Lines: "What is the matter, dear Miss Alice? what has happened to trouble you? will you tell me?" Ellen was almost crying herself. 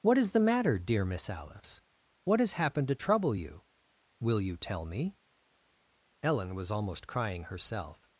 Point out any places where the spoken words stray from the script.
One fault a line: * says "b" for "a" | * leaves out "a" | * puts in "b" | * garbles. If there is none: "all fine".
all fine